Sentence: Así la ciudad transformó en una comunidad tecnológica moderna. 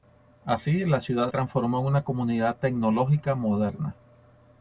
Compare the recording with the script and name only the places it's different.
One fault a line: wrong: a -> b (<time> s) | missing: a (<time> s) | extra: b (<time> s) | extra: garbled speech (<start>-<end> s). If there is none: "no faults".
no faults